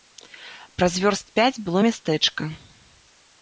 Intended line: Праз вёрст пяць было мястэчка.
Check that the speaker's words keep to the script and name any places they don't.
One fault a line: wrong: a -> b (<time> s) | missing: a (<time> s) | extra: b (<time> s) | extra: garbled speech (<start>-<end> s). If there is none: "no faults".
no faults